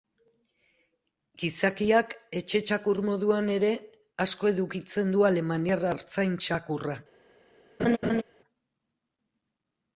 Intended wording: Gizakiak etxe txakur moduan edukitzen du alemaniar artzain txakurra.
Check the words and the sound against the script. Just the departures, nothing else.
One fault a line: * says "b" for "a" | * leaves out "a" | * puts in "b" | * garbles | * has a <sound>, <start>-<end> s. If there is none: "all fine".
* puts in "ere asko"
* has a laugh, 7.8-8.2 s